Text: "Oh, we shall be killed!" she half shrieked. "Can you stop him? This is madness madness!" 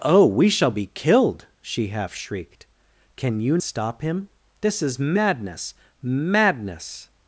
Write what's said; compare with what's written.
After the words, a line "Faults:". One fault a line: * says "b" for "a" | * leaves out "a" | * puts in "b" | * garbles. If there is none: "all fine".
"Oh, we shall be killed!" she half shrieked. "Can you stop him? This is madness madness!"
Faults:
all fine